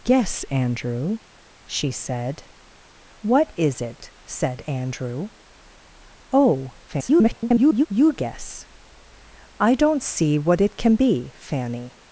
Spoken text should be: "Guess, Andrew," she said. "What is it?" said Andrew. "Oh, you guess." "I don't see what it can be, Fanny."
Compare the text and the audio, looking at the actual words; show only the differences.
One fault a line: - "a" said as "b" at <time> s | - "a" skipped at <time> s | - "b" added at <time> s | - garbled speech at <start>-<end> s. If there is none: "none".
- garbled speech at 6.9-7.9 s